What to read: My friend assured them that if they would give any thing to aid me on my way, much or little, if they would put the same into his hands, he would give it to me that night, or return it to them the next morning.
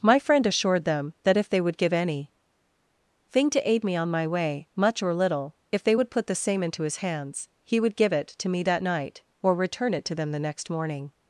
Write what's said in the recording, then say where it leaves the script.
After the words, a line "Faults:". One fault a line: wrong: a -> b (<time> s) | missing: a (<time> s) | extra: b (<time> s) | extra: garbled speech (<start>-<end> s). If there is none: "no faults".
My friend assured them that if they would give any thing to aid me on my way, much or little, if they would put the same into his hands, he would give it to me that night, or return it to them the next morning.
Faults:
no faults